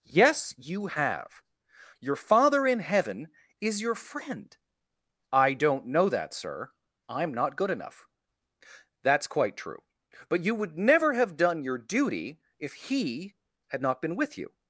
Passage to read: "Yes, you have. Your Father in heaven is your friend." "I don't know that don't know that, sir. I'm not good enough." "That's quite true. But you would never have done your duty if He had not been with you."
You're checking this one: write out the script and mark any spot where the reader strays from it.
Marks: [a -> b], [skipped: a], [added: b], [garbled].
"Yes, you have. Your Father in heaven is your friend." "I don't know that [skipped: don't know that,] sir. I'm not good enough." "That's quite true. But you would never have done your duty if He had not been with you."